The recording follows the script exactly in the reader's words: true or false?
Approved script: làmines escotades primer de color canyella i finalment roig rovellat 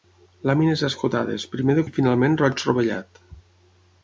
false